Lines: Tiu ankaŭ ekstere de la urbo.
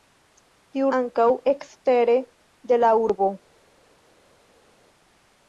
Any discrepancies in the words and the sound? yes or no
no